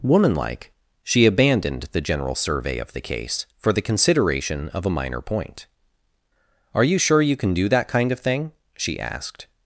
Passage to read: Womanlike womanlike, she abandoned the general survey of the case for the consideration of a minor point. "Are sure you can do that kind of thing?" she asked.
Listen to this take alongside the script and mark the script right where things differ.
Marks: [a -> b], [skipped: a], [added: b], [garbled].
Womanlike [skipped: womanlike,] she abandoned the general survey of the case for the consideration of a minor point. "Are [added: you] sure you can do that kind of thing?" she asked.